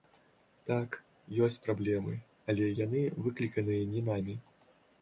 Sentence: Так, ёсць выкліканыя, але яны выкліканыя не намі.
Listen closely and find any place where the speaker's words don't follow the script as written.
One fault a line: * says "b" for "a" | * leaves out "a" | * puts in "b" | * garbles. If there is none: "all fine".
* says "праблемы" for "выкліканыя"